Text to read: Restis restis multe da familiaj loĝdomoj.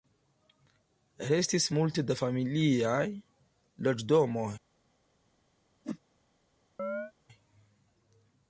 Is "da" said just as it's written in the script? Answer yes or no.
yes